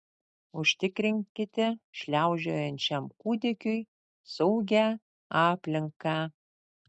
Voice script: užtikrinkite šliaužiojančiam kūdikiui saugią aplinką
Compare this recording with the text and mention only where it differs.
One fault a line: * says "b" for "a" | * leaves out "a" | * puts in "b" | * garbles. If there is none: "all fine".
all fine